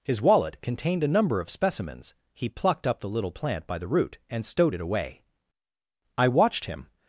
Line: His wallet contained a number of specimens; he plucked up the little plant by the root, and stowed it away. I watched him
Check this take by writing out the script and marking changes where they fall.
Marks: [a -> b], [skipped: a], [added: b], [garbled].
His wallet contained a number of specimens; he plucked up the little plant by the root, and stowed it away. I watched him